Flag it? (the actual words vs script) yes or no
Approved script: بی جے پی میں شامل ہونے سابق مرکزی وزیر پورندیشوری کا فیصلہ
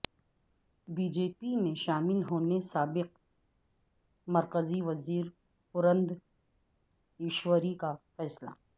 no